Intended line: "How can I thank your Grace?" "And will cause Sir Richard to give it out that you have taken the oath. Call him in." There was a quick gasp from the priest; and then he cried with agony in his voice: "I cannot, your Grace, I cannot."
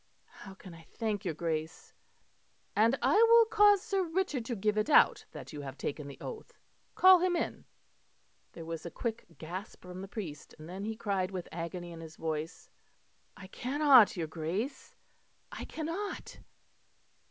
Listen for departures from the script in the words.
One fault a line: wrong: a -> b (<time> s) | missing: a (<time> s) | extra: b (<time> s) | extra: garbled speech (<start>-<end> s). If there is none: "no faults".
extra: I (3.0 s)